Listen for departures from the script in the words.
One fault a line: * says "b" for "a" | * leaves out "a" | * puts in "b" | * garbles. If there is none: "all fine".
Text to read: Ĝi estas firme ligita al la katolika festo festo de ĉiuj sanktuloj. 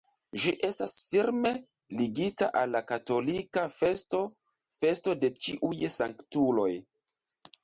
all fine